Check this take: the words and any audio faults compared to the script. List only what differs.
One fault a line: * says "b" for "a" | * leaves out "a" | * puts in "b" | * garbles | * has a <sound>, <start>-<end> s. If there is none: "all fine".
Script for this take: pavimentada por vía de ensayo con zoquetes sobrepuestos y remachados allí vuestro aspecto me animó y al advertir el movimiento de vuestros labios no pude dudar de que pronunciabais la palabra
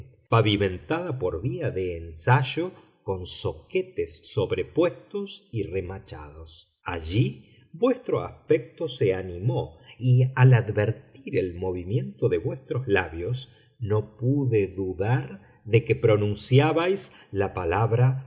* says "se" for "me"